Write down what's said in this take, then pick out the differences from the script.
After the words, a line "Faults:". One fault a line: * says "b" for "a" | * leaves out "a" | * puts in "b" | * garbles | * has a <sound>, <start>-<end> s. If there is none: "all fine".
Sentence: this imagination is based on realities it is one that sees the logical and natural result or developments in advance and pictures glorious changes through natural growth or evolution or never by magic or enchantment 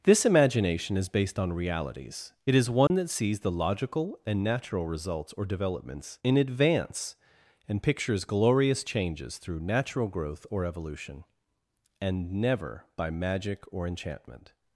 this imagination is based on realities it is one that sees the logical and natural results or developments in advance and pictures glorious changes through natural growth or evolution and never by magic or enchantment
Faults:
* has a dropout, 2.9-2.9 s
* says "results" for "result"
* says "and" for "or"